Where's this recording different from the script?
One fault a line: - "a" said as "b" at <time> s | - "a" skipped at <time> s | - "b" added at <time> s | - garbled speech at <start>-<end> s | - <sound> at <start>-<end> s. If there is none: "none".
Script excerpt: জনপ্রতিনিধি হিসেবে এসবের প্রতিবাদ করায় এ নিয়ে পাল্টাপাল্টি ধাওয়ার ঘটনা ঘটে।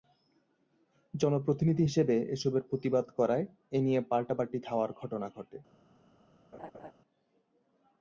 - laugh at 6.5-6.9 s